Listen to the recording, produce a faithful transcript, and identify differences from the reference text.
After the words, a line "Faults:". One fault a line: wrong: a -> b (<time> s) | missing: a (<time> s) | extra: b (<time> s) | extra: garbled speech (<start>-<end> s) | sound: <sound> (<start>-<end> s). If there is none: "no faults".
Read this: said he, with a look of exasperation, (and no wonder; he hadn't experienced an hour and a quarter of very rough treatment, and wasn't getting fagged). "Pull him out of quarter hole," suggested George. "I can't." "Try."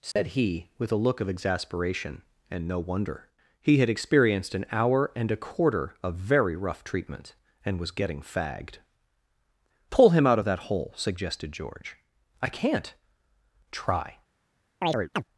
said he, with a look of exasperation, (and no wonder; he had experienced an hour and a quarter of very rough treatment, and was getting fagged). "Pull him out of that hole," suggested George. "I can't." "Try."
Faults:
sound: dropout (0.1-0.2 s)
wrong: hadn't -> had (3.8 s)
wrong: wasn't -> was (7.8 s)
wrong: quarter -> that (10.5 s)
sound: chirp (14.8-15.2 s)